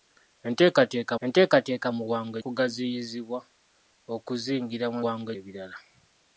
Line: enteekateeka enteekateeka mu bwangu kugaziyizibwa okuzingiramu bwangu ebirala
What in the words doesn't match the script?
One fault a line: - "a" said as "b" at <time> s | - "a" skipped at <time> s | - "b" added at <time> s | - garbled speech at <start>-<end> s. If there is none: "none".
none